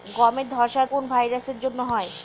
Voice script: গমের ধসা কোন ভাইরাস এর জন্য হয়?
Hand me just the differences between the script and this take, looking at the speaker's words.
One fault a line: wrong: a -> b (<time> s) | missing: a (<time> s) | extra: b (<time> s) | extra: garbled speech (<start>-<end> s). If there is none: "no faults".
no faults